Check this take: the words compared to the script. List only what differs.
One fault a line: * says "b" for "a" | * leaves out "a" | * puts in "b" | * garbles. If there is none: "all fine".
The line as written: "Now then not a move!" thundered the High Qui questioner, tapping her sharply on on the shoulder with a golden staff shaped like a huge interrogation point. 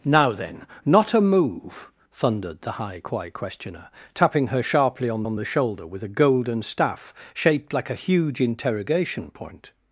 all fine